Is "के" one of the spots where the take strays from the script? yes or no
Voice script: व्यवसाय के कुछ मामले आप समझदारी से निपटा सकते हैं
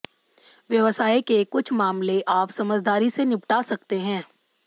no